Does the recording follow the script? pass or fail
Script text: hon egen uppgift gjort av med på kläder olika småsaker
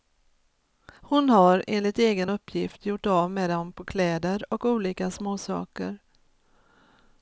fail